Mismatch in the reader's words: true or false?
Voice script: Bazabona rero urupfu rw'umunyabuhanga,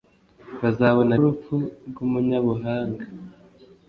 true